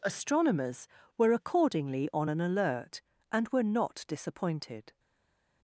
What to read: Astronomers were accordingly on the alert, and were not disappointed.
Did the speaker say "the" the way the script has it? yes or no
no